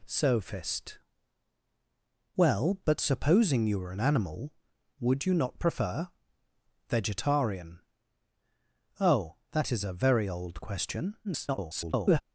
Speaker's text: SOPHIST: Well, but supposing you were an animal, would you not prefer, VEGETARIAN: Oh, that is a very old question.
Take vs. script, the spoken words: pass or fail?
fail